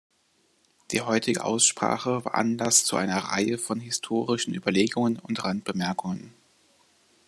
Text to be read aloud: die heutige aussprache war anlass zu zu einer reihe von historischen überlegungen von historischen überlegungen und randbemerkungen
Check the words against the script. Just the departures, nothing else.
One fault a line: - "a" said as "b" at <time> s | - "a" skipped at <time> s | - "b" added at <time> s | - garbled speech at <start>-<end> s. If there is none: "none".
- "zu" skipped at 3.0 s
- "von historischen überlegungen" skipped at 5.2 s